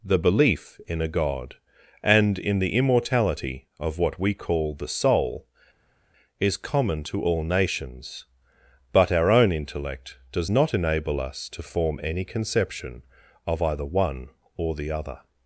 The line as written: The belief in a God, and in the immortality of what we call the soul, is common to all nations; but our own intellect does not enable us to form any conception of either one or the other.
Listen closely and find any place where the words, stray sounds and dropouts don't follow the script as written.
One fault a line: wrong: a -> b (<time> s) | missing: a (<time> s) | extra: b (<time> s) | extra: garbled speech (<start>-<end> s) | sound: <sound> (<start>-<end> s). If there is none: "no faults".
no faults